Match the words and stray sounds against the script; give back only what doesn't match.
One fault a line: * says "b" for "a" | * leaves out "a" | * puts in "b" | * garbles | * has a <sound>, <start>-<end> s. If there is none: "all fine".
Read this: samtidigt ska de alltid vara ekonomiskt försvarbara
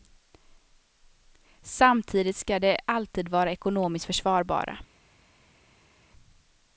all fine